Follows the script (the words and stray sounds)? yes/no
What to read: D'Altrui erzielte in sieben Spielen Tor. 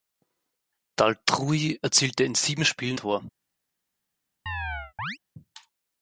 no